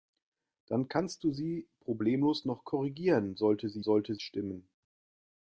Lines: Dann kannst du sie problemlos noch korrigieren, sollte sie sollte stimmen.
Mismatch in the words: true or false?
false